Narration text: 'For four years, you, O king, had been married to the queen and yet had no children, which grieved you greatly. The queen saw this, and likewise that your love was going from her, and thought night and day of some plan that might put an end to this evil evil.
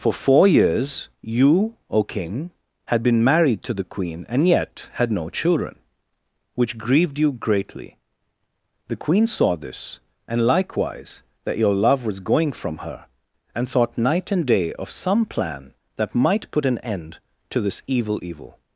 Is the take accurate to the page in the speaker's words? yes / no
yes